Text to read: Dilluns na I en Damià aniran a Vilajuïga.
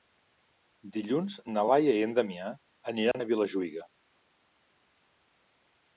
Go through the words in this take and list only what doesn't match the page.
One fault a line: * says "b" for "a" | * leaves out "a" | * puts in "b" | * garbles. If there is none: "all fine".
* puts in "Laia"